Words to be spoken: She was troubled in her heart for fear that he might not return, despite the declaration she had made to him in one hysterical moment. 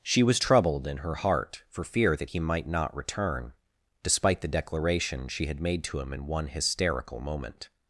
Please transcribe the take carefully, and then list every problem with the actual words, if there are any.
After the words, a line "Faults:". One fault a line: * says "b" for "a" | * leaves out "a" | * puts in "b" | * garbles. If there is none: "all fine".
She was troubled in her heart for fear that he might not return, despite the declaration she had made to him in one hysterical moment.
Faults:
all fine